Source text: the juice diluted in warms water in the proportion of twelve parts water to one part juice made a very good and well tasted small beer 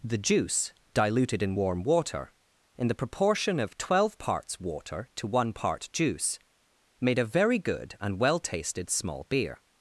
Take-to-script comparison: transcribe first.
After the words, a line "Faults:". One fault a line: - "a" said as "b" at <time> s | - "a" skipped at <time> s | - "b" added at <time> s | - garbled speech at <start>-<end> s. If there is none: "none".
the juice diluted in warm water in the proportion of twelve parts water to one part juice made a very good and well tasted small beer
Faults:
- "warms" said as "warm" at 1.5 s